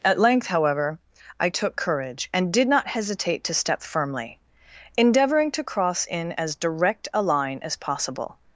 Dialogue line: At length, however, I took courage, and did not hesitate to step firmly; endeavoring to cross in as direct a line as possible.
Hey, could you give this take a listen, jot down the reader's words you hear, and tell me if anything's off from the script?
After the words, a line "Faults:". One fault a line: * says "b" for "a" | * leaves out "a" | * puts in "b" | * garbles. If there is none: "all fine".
At length, however, I took courage, and did not hesitate to step firmly; endeavoring to cross in as direct a line as possible.
Faults:
all fine